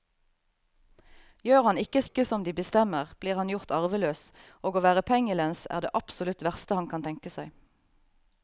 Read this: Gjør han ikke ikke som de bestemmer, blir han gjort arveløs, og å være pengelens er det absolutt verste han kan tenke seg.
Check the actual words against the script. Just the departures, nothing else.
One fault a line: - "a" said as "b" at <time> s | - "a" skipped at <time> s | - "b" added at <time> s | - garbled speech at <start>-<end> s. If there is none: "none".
none